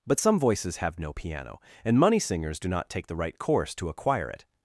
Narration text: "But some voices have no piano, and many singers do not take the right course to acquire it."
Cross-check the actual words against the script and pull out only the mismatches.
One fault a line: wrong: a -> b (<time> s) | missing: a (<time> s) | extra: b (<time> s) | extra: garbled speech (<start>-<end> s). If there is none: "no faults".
wrong: many -> money (2.0 s)